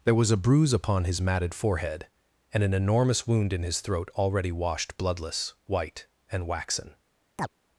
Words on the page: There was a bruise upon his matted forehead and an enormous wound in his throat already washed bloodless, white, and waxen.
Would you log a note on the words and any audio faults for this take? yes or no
yes